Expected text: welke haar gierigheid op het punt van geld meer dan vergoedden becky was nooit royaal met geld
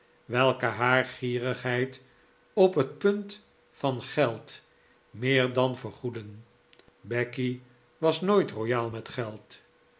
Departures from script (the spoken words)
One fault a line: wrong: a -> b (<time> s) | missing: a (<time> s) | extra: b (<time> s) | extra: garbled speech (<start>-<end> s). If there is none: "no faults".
no faults